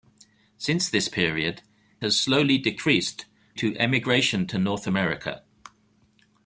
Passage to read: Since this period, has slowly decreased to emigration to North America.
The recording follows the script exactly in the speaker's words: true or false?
true